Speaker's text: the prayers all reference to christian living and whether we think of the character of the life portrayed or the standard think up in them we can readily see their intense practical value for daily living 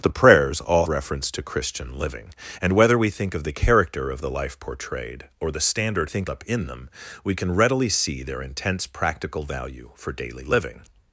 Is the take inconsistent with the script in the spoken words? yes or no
no